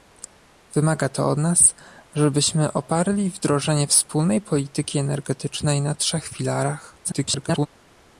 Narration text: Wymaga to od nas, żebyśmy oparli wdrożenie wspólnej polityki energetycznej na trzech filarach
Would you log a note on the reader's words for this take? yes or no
yes